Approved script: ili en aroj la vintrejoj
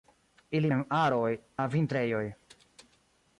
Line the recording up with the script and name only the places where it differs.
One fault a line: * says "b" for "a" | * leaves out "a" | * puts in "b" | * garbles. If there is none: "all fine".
all fine